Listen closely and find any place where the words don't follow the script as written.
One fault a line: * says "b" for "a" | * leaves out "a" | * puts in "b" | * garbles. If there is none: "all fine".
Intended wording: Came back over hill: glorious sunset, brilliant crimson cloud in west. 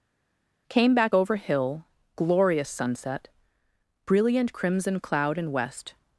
all fine